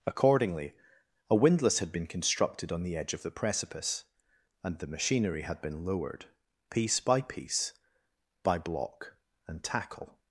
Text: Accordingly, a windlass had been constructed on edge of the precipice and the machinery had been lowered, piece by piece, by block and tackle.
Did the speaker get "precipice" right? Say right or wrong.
right